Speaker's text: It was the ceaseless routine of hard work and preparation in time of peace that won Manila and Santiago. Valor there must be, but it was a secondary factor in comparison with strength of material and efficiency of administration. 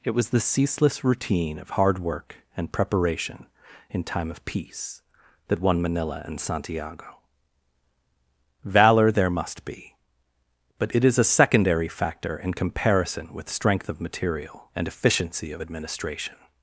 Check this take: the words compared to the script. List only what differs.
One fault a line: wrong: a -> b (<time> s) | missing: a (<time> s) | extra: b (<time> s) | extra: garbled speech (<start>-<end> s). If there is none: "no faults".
wrong: was -> is (11.1 s)